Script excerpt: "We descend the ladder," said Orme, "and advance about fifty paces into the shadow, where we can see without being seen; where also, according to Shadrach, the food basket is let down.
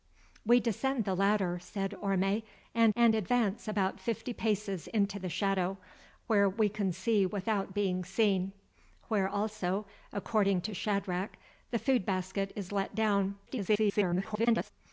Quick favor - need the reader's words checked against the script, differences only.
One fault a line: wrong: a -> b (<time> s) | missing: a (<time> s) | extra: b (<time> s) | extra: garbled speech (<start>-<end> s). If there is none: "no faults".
extra: and (2.9 s)
extra: garbled speech (13.5-14.7 s)